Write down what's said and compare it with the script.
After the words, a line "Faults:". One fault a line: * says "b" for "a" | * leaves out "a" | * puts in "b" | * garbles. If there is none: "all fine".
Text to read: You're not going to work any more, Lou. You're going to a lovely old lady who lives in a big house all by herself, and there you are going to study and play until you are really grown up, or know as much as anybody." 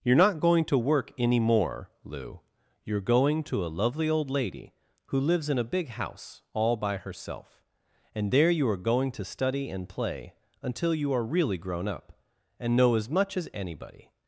You're not going to work any more, Lou. You're going to a lovely old lady who lives in a big house all by herself, and there you are going to study and play until you are really grown up, and know as much as anybody."
Faults:
* says "and" for "or"